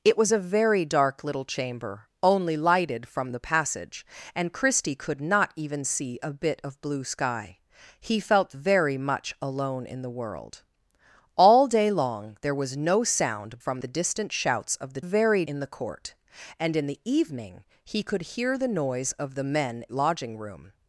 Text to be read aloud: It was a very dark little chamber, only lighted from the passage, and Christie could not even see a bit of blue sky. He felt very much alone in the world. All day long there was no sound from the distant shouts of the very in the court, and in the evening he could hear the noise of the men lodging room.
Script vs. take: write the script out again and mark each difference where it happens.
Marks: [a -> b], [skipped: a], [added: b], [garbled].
It was a very dark little chamber, only lighted from the passage, and Christie could not even see a bit of blue sky. He felt very much alone in the world. All day long there was no sound from the distant shouts of the very in the court, and in the evening he could hear the noise of the men lodging room.